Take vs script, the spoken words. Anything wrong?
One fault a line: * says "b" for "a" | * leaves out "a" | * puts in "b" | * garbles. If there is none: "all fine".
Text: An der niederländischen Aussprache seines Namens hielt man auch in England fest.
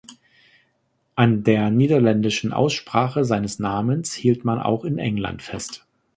all fine